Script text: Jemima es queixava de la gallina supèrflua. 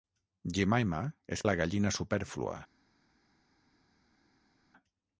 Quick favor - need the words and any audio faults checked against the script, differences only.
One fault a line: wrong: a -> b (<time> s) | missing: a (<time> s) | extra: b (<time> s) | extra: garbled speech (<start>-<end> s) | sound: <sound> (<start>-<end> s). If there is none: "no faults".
missing: queixava (1.4 s)